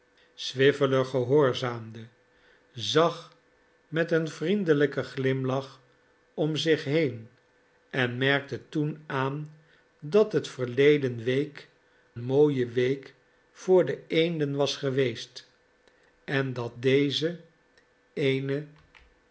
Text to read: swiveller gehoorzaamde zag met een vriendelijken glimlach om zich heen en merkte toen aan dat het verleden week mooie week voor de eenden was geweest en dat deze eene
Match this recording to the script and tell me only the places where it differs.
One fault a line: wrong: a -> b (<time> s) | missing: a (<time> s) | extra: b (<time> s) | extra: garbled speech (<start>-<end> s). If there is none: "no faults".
no faults